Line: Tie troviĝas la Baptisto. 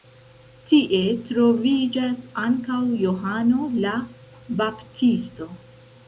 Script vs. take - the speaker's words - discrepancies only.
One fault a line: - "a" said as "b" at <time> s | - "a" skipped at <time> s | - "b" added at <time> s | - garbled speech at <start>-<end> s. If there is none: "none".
- "ankaŭ Johano" added at 2.4 s